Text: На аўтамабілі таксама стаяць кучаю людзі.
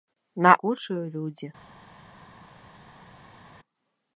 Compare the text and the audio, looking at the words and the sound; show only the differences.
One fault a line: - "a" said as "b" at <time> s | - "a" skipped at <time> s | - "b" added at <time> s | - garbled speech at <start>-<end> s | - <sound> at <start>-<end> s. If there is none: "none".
- "аўтамабілі таксама стаяць" skipped at 0.5 s